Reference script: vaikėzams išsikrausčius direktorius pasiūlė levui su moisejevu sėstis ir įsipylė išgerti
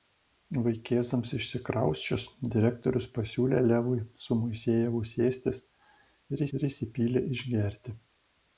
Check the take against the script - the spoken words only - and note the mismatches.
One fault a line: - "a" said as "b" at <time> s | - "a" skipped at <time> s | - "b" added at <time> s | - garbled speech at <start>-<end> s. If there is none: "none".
- "ir" added at 6.6 s